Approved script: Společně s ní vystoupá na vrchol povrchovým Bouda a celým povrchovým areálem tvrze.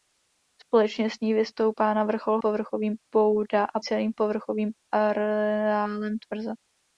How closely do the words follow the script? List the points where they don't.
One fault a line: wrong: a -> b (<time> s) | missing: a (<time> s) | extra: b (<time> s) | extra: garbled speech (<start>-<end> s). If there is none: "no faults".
no faults